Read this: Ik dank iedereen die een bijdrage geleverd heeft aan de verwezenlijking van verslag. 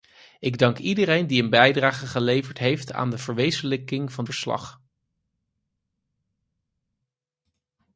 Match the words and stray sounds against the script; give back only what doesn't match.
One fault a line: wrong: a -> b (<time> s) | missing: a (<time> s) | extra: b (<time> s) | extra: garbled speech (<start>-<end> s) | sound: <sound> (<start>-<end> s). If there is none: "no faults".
no faults